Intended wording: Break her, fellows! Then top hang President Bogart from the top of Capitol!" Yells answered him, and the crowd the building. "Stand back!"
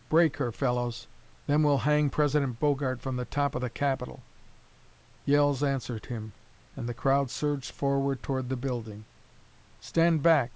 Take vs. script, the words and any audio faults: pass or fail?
fail